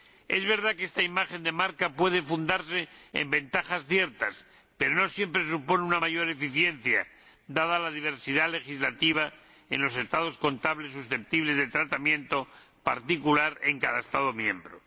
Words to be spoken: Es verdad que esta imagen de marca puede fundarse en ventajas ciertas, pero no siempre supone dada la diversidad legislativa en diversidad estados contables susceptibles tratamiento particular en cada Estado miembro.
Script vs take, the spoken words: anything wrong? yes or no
yes